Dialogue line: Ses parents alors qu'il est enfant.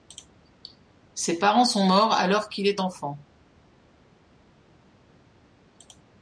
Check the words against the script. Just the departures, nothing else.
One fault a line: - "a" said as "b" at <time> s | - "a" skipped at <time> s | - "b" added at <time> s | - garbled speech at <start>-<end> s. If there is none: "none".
- "sont morts" added at 1.6 s